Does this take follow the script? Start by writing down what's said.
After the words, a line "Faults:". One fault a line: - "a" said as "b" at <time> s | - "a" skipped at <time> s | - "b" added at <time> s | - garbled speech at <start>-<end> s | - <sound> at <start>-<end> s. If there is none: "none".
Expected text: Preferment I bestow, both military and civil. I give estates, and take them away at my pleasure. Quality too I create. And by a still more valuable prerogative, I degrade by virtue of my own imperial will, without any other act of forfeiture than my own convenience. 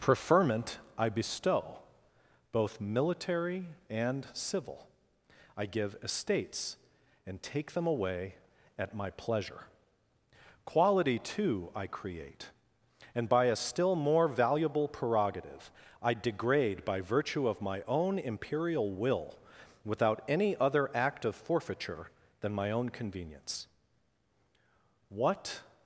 Preferment I bestow, both military and civil. I give estates, and take them away at my pleasure. Quality too I create. And by a still more valuable prerogative, I degrade by virtue of my own imperial will, without any other act of forfeiture than my own convenience. What
Faults:
- "What" added at 25.1 s